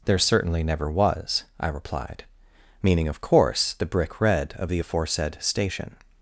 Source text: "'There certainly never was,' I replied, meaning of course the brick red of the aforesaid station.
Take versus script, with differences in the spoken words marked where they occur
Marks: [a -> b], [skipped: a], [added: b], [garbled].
"'There certainly never was,' I replied, meaning of course the brick red of the aforesaid station.